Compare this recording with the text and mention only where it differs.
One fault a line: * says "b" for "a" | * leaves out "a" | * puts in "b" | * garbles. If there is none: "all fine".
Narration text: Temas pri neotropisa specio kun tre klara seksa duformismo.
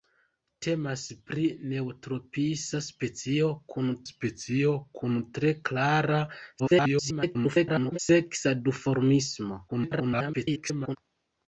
* puts in "specio kun"
* garbles
* garbles